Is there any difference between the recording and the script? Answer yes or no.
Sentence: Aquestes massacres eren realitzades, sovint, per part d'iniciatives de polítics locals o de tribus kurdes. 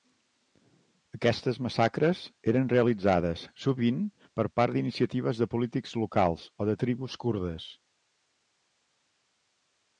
no